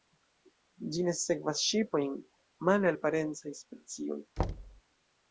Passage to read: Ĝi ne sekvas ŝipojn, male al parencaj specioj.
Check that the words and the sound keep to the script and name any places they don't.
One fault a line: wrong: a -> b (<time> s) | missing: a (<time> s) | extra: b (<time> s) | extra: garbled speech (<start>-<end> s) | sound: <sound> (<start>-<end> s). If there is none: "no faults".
sound: thud (4.4-4.8 s)